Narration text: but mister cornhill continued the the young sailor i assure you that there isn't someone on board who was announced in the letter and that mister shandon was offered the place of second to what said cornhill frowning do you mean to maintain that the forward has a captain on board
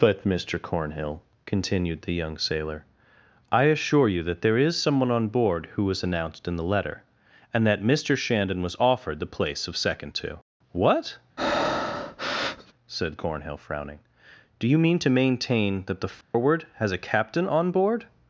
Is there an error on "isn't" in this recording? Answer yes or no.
yes